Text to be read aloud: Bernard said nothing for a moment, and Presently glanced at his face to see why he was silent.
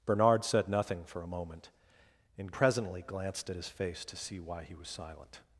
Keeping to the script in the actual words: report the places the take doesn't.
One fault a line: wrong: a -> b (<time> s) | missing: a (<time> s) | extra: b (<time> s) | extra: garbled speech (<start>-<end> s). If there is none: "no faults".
no faults